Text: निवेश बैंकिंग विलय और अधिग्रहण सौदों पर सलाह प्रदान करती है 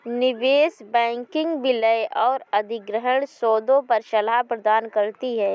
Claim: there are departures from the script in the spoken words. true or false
false